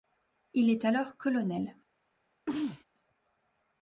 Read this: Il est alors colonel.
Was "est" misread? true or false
false